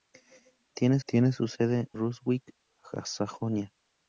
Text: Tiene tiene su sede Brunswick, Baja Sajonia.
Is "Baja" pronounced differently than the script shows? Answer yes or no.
no